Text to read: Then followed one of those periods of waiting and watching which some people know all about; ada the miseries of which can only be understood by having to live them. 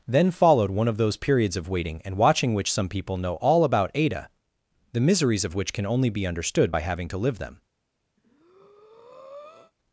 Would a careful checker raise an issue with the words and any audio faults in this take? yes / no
yes